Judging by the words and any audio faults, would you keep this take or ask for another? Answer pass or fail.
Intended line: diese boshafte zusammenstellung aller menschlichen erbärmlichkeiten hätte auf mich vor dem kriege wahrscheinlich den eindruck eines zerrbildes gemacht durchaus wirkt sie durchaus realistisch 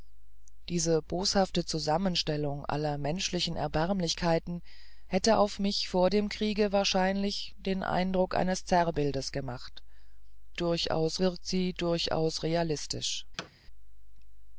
fail